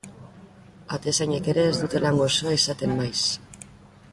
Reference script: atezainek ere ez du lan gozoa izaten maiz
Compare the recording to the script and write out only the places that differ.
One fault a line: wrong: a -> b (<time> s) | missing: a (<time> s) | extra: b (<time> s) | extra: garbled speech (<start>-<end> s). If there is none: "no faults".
wrong: du -> dute (1.8 s)